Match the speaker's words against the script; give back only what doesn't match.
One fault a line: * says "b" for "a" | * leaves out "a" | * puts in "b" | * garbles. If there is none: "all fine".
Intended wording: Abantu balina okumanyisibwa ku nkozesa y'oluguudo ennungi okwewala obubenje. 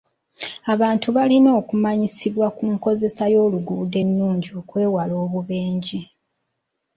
all fine